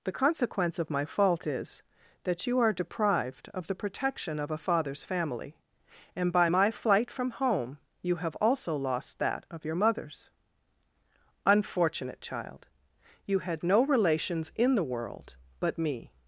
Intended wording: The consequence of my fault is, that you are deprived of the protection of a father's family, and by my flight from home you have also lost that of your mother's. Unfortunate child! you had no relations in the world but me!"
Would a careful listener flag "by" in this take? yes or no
no